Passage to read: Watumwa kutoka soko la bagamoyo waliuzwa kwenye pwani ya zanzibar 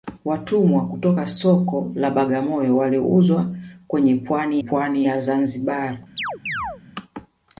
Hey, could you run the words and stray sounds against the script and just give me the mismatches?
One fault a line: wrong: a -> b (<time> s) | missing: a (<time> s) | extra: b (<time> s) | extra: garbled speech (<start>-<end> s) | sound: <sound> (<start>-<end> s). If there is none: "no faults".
extra: pwani (4.6 s)
sound: chirp (6.2-6.8 s)